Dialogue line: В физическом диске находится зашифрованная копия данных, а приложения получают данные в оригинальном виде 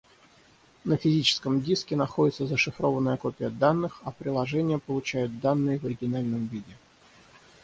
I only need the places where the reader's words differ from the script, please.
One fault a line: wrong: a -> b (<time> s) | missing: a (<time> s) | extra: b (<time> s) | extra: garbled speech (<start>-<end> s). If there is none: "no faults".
wrong: В -> На (0.8 s)